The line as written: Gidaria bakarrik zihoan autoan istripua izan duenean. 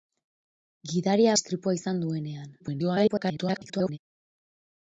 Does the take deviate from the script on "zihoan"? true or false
true